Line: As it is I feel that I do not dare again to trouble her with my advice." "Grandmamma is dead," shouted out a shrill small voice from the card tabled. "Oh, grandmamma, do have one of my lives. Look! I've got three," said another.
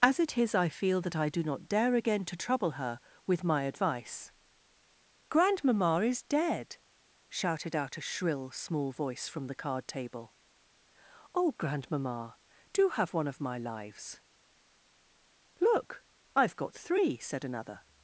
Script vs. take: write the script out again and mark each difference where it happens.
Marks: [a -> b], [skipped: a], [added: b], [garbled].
As it is I feel that I do not dare again to trouble her with my advice." "Grandmamma is dead," shouted out a shrill small voice from the card [tabled. -> table] "Oh, grandmamma, do have one of my lives. Look! I've got three," said another.